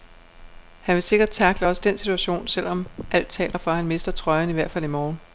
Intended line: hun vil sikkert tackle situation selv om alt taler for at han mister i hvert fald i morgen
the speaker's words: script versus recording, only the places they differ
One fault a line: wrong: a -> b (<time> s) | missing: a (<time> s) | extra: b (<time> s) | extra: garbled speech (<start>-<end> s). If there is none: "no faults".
wrong: hun -> han (0.8 s)
extra: også den (1.7 s)
extra: trøjen (4.1 s)